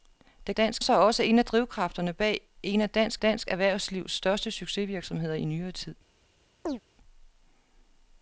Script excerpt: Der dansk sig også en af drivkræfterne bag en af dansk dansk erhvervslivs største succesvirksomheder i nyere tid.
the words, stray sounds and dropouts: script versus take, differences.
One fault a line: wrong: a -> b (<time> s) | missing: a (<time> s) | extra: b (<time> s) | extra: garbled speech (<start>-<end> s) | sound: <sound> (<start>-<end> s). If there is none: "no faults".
sound: chirp (6.7-6.8 s)